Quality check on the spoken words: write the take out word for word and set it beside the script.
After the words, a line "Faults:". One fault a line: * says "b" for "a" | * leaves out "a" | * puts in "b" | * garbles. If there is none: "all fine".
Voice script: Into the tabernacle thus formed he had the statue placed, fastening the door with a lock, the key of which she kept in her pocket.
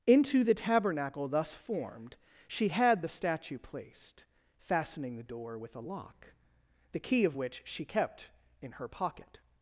Into the tabernacle thus formed she had the statue placed, fastening the door with a lock, the key of which she kept in her pocket.
Faults:
* says "she" for "he"